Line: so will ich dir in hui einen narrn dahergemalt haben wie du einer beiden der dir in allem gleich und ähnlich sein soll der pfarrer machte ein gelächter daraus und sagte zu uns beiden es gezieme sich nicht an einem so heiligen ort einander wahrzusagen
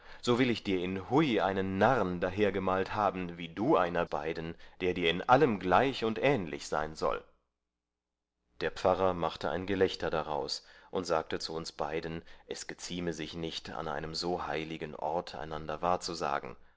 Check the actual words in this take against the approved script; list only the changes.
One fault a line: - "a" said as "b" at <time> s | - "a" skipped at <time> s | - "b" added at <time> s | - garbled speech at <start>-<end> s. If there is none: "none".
none